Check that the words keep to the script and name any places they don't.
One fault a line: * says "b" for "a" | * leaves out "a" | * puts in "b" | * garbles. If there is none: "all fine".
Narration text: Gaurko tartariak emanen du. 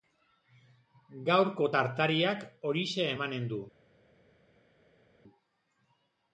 * puts in "horixe"